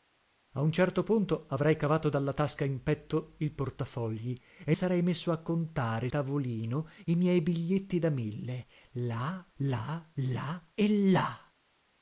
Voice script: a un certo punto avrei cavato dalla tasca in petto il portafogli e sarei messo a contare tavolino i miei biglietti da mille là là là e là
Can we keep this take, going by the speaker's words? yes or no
yes